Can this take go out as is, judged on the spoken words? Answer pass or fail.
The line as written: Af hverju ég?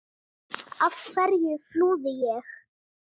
fail